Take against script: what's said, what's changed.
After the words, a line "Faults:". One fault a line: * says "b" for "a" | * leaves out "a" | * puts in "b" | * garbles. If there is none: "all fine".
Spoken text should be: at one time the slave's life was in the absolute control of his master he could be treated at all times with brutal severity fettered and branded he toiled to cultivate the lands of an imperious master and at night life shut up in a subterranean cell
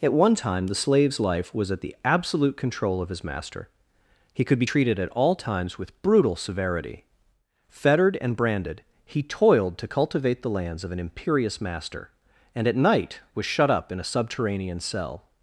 at one time the slave's life was at the absolute control of his master he could be treated at all times with brutal severity fettered and branded he toiled to cultivate the lands of an imperious master and at night was shut up in a subterranean cell
Faults:
* says "at" for "in"
* says "was" for "life"